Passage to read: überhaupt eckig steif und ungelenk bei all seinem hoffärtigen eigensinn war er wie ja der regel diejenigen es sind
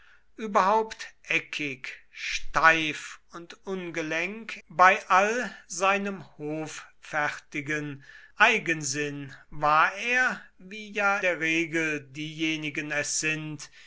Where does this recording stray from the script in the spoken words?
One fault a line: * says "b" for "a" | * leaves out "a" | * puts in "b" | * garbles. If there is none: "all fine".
all fine